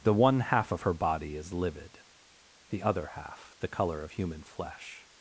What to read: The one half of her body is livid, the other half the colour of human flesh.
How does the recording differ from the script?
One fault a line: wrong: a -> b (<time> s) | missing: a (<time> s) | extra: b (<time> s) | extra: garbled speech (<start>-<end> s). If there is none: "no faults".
no faults